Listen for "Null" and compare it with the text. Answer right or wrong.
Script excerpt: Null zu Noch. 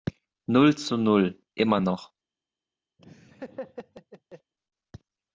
right